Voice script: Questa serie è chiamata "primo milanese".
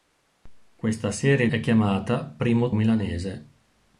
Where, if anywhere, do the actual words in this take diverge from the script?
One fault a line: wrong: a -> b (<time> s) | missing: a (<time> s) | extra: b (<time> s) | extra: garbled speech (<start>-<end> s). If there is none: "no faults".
no faults